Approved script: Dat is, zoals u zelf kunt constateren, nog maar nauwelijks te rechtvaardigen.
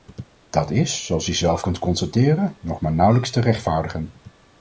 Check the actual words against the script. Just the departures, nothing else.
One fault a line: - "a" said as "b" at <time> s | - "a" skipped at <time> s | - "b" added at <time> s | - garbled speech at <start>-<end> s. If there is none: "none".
none